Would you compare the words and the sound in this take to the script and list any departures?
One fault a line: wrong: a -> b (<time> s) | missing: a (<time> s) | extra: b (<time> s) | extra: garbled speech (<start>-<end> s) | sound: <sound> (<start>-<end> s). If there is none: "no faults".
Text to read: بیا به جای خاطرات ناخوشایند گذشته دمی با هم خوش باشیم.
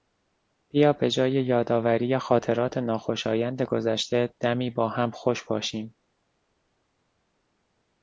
extra: یادآوری (1.3 s)